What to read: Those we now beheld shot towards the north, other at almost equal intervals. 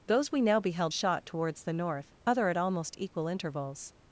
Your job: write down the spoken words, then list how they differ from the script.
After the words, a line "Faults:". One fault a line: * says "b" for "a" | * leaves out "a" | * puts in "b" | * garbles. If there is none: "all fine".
Those we now beheld shot towards the north, other at almost equal intervals.
Faults:
all fine